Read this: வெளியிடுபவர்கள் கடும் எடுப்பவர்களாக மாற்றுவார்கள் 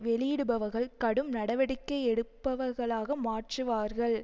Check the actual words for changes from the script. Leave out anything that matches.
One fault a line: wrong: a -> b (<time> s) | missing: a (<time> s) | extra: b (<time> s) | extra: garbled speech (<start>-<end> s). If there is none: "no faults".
extra: நடவடிக்கை (1.3 s)